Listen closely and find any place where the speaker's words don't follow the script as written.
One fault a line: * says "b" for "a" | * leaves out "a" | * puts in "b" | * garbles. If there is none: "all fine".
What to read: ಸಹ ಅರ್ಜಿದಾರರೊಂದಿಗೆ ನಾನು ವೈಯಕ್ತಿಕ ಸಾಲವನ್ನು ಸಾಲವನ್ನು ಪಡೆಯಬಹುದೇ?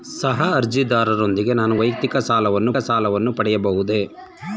all fine